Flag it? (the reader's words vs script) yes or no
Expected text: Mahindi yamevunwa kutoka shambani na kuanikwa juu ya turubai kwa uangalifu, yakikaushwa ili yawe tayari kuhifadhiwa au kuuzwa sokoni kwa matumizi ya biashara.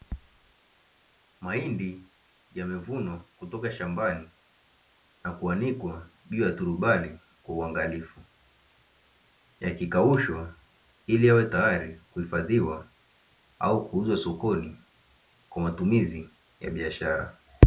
no